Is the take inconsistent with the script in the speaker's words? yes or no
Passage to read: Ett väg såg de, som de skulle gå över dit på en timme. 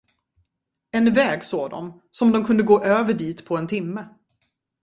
yes